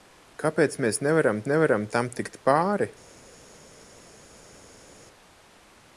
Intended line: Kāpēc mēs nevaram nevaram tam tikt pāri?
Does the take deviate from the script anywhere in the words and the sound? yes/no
no